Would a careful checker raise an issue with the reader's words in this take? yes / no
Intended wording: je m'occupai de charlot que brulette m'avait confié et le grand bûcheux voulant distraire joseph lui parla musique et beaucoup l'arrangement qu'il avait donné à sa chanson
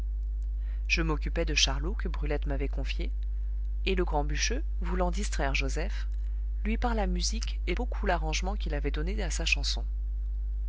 no